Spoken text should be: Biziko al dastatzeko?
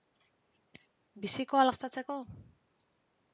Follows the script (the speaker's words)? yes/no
yes